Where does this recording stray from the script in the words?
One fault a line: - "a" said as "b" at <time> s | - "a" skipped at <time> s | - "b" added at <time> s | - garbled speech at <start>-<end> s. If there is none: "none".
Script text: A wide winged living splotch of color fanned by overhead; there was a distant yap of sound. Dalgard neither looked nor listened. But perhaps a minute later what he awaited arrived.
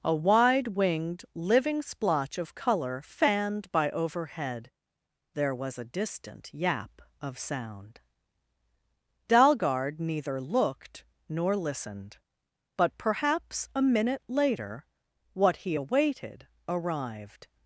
none